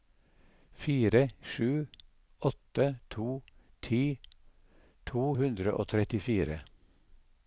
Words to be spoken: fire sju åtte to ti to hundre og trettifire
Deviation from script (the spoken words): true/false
false